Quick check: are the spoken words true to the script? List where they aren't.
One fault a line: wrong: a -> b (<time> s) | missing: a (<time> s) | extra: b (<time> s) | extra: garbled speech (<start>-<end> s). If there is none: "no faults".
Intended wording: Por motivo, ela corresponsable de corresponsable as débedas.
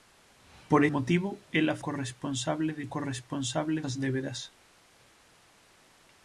no faults